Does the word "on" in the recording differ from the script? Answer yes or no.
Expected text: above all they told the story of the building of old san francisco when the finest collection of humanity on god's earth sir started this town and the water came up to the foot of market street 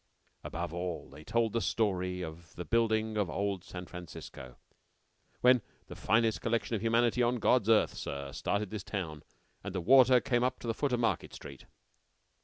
no